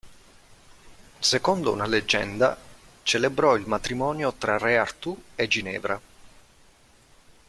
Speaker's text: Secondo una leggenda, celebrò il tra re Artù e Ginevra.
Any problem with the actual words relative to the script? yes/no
yes